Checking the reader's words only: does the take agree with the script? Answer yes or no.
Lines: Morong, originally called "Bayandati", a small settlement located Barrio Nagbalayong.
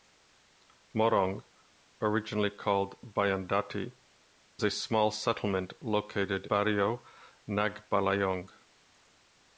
yes